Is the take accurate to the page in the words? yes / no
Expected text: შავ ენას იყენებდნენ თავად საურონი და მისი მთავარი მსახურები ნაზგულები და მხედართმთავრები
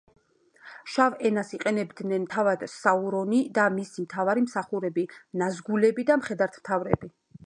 yes